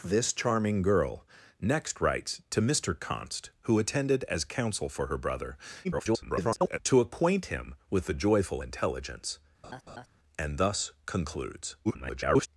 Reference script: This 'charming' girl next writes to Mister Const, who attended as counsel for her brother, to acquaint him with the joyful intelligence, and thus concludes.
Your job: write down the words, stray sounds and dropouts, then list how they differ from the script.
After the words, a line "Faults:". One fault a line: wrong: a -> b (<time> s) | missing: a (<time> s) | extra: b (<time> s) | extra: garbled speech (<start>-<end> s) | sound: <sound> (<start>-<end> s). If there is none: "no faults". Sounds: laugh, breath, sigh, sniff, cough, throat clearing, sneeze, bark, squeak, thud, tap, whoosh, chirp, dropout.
This 'charming' girl next writes to Mister Const, who attended as counsel for her brother, [garbled] to acquaint him with the joyful intelligence, and thus concludes. [garbled]
Faults:
extra: garbled speech (5.8-6.8 s)
sound: laugh (9.6-10.1 s)
extra: garbled speech (11.8-12.5 s)